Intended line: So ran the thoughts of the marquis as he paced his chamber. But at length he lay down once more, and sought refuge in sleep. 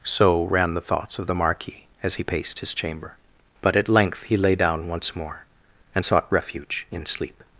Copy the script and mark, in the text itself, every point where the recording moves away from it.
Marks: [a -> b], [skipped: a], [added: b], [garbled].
So ran the thoughts of the marquis as he paced his chamber. But at length he lay down once more, and sought refuge in sleep.